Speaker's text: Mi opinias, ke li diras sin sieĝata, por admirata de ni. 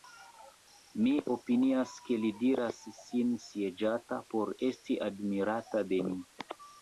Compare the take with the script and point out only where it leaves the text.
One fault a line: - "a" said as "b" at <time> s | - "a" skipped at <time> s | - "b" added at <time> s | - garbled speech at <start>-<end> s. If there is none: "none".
- "esti" added at 4.7 s